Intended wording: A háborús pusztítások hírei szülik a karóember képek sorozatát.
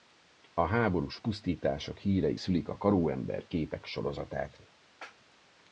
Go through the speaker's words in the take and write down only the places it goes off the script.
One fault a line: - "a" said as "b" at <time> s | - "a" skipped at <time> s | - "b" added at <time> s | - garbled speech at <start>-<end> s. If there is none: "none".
none